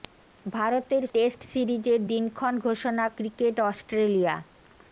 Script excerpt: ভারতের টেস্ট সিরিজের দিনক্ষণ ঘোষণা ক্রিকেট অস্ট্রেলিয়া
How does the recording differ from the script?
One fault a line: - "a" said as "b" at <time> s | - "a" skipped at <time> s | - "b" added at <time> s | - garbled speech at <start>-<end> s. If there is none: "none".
none